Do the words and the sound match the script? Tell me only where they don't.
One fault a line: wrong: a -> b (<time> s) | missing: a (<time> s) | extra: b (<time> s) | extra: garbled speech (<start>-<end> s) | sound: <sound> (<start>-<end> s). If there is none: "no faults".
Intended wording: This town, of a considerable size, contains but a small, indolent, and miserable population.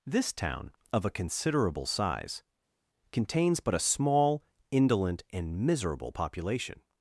no faults